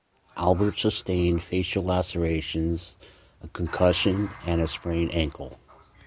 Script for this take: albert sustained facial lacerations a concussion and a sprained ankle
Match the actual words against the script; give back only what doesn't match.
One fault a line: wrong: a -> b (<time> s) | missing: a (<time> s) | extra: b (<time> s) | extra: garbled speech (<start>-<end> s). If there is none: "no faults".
no faults